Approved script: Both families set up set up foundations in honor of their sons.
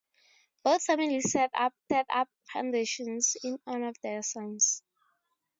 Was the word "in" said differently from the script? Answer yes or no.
no